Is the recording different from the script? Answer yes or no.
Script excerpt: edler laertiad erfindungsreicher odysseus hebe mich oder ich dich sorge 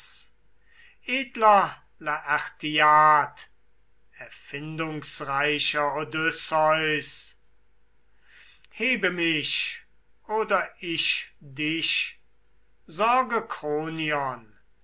no